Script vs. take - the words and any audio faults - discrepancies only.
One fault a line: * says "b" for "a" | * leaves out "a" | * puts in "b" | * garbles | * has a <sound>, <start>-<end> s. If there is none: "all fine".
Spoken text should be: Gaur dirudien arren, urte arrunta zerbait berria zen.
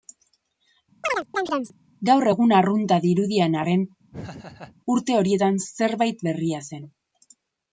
* has a chirp, 1.0-1.8 s
* puts in "egun arrunta"
* has a laugh, 4.1-4.8 s
* says "horietan" for "arrunta"